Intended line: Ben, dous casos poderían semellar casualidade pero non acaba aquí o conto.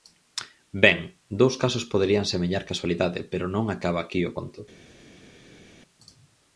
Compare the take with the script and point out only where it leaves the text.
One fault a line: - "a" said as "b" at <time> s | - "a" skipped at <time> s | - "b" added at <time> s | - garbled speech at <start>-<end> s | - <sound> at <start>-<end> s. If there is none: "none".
none